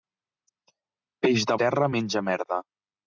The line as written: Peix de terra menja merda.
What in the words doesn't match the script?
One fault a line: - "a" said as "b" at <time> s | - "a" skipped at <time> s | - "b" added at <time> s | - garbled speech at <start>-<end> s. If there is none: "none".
none